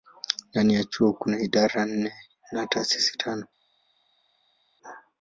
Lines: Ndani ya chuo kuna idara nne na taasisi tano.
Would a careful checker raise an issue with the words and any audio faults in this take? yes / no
no